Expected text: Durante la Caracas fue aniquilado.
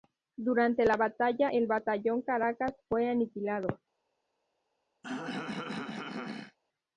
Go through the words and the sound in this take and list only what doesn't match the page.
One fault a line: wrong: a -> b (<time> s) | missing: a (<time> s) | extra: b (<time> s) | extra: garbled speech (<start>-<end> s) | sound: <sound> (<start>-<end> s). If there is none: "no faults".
extra: batalla el batallón (1.0 s)
sound: throat clearing (5.0-6.6 s)